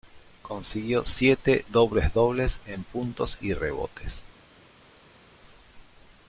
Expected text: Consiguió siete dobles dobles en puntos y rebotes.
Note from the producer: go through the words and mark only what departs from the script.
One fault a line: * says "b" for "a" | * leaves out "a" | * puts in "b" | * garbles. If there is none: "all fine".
all fine